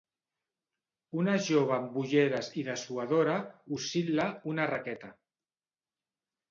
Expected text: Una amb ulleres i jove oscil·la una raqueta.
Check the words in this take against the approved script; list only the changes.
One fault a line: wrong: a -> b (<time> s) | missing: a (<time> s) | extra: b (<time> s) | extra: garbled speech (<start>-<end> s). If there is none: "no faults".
extra: jove (1.5 s)
wrong: jove -> dessuadora (2.7 s)